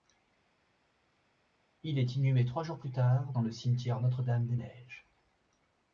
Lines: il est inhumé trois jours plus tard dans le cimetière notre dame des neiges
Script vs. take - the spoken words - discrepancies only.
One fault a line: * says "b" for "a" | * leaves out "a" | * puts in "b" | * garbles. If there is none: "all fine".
all fine